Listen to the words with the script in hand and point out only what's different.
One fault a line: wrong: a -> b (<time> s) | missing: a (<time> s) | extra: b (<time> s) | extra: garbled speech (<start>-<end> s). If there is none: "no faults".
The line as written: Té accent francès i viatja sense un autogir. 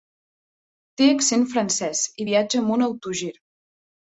wrong: sense -> amb (2.6 s)